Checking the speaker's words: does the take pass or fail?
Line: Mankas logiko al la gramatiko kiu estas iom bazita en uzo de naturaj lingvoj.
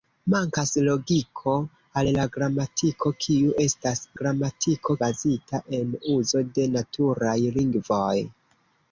fail